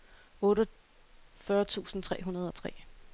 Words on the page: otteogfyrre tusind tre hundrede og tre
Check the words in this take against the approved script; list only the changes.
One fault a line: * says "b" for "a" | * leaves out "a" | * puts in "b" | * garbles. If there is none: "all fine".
all fine